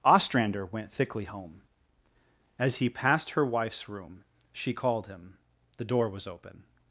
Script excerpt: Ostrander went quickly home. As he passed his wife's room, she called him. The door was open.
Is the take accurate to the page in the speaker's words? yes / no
no